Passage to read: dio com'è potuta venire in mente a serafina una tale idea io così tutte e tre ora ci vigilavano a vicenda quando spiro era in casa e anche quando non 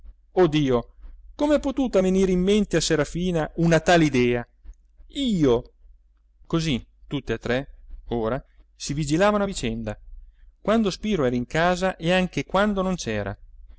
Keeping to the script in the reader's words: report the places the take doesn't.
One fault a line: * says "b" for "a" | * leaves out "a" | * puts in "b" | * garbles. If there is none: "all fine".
* says "si" for "ci"